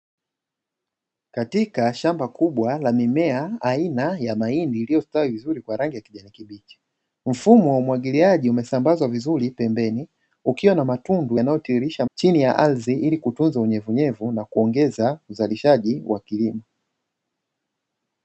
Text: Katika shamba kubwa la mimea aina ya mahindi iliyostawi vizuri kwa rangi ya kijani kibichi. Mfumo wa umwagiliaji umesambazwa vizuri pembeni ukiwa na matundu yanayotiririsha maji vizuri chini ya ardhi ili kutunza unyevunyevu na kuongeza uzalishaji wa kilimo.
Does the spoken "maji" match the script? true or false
false